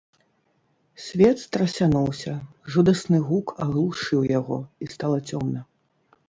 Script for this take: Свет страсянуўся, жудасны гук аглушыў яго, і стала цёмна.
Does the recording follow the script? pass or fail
pass